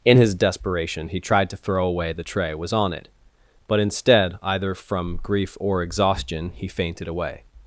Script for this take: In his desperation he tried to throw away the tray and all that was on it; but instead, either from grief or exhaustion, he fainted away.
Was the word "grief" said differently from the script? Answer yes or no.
no